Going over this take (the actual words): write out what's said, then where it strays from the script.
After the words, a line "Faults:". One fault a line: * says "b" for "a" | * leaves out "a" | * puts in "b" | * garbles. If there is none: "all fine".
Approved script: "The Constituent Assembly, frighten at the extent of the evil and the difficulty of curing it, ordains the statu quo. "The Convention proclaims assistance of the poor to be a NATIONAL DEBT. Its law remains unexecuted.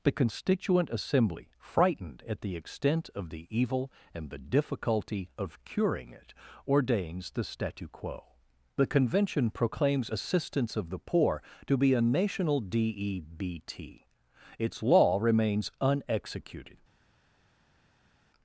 "The Constituent Assembly, frightened at the extent of the evil and the difficulty of curing it, ordains the statu quo. "The Convention proclaims assistance of the poor to be a NATIONAL DEBT. Its law remains unexecuted.
Faults:
* says "frightened" for "frighten"